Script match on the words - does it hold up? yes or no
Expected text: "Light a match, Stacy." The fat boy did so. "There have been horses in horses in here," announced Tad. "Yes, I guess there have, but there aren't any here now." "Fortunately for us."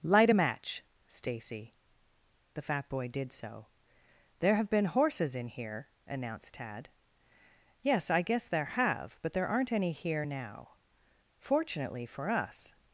no